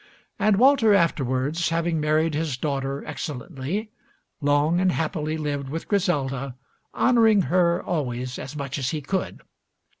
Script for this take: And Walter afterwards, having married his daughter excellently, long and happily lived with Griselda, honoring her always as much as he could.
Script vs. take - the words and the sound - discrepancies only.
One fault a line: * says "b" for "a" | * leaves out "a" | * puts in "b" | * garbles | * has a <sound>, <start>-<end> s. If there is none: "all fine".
all fine